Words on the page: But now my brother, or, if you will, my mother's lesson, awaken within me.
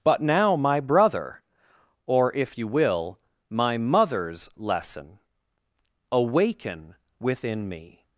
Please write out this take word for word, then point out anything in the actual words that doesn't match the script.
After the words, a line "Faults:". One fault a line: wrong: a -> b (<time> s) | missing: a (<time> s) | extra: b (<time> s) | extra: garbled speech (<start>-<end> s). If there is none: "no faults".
But now my brother, or, if you will, my mother's lesson, awaken within me.
Faults:
no faults